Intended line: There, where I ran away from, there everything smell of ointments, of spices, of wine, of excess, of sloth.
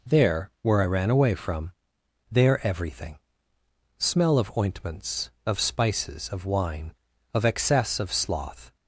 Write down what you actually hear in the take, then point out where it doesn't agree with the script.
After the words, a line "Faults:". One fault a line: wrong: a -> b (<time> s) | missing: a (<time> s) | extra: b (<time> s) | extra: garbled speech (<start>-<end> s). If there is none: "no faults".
There, where I ran away from, there everything smell of ointments, of spices, of wine, of excess, of sloth.
Faults:
no faults